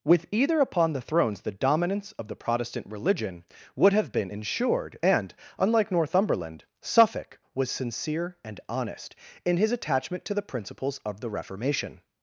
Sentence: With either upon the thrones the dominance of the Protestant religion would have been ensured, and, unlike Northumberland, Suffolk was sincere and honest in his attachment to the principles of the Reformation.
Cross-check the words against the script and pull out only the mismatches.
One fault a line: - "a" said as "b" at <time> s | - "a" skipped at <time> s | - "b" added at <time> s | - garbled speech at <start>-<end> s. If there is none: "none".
none